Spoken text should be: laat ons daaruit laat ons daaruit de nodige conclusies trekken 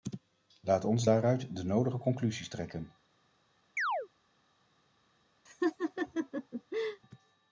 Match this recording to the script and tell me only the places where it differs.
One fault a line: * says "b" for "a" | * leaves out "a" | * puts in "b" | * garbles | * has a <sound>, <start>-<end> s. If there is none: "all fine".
* leaves out "laat ons daaruit"
* has a chirp, 3.8-4.1 s
* has a laugh, 5.5-7.0 s